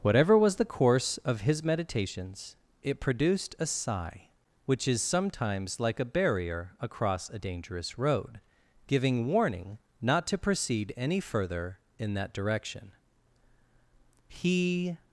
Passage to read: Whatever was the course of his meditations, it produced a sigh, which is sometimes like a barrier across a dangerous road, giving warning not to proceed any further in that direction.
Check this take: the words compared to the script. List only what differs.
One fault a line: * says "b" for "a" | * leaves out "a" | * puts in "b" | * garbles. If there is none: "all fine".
* puts in "He"